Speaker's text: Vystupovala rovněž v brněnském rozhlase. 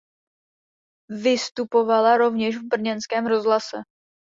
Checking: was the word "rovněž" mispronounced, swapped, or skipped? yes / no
no